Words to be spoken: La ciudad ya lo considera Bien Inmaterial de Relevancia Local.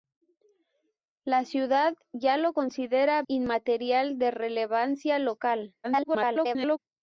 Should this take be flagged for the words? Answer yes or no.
yes